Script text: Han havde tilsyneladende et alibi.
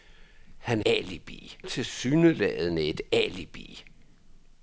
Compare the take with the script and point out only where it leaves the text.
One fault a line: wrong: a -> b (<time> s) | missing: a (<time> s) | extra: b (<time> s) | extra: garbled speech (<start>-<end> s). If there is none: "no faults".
wrong: havde -> alibi (0.8 s)